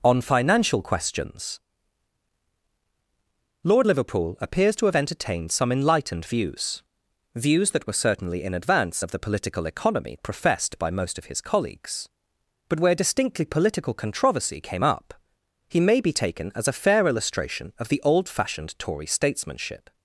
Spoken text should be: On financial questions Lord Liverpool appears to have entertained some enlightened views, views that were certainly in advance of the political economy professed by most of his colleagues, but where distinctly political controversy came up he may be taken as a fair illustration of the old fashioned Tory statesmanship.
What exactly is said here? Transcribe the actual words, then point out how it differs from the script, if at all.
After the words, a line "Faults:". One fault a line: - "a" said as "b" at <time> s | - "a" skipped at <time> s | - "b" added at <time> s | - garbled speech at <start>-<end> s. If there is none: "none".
On financial questions Lord Liverpool appears to have entertained some enlightened views, views that were certainly in advance of the political economy professed by most of his colleagues, but where distinctly political controversy came up he may be taken as a fair illustration of the old fashioned Tory statesmanship.
Faults:
none